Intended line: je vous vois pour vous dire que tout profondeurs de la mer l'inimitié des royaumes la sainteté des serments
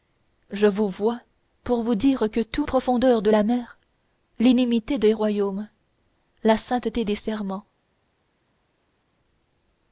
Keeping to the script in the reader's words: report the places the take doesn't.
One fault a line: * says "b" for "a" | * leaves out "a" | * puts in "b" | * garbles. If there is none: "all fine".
all fine